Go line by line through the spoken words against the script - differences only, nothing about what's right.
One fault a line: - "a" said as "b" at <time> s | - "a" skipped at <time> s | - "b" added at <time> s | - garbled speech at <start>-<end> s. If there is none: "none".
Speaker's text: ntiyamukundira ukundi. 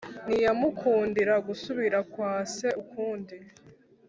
- "gusubira kwa se" added at 1.5 s